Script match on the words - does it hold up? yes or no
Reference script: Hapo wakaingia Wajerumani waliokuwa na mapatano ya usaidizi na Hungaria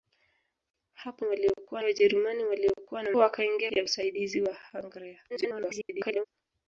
no